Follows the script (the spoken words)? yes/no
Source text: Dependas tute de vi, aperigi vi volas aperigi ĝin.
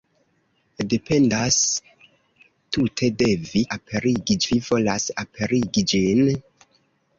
yes